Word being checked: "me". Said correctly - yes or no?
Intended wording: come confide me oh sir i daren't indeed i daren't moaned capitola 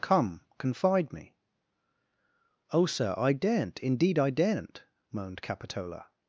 yes